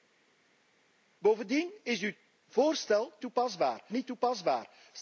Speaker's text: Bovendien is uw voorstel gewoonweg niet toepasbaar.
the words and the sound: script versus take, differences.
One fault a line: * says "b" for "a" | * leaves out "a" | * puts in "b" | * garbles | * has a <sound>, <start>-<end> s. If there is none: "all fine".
* says "toepasbaar" for "gewoonweg"